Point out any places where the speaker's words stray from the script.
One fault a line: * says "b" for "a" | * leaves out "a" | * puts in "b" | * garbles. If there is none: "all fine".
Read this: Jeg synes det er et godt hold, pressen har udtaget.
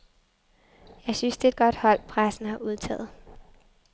all fine